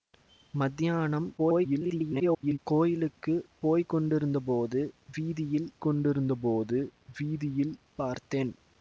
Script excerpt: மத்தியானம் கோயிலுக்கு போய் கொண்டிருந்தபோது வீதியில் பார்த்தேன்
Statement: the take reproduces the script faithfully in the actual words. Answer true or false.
false